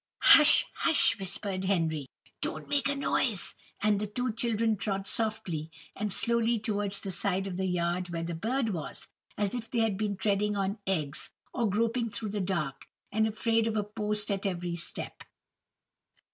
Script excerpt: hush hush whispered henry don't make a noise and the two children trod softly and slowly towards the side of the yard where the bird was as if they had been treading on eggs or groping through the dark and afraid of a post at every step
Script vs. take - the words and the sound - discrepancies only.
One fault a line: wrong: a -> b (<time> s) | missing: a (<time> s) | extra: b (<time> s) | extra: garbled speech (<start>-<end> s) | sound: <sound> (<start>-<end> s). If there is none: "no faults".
no faults